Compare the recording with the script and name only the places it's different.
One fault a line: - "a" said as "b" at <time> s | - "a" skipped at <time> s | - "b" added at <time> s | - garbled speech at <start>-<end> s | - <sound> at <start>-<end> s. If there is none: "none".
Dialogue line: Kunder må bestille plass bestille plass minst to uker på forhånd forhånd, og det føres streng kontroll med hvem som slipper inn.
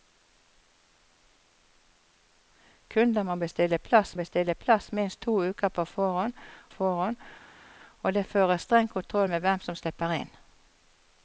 none